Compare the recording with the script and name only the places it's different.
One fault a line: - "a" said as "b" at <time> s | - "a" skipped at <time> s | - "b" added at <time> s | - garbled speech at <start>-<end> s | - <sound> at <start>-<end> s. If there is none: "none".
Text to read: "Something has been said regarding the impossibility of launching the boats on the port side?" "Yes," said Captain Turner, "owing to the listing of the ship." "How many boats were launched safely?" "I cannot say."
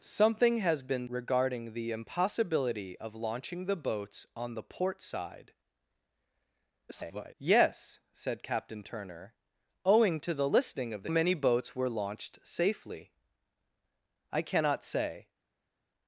- "said" skipped at 1.1 s
- garbled speech at 6.9-7.3 s
- "ship How" skipped at 11.1 s